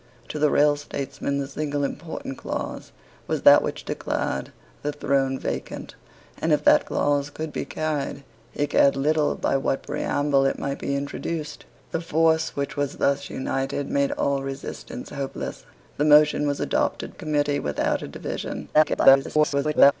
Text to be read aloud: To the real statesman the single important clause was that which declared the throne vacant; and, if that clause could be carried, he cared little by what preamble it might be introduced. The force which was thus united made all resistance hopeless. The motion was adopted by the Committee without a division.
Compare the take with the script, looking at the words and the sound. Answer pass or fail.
fail